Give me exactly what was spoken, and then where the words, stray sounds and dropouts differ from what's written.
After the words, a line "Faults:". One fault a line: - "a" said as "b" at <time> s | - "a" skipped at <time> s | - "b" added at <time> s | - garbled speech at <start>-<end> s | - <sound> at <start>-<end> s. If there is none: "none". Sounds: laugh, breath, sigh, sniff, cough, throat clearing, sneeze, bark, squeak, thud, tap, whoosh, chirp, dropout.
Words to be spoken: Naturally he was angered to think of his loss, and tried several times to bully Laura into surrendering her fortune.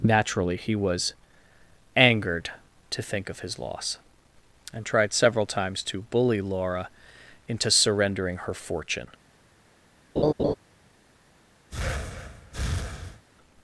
Naturally he was angered to think of his loss, and tried several times to bully Laura into surrendering her fortune.
Faults:
- laugh at 10.2-10.5 s
- breath at 11.7-13.2 s